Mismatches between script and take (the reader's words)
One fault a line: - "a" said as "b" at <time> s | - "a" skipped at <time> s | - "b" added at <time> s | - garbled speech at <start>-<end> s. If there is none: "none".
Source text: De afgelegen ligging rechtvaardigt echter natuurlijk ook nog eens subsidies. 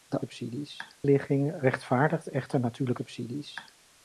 - "afgelegen" said as "subsidies" at 0.2 s
- "ook nog eens" skipped at 3.0 s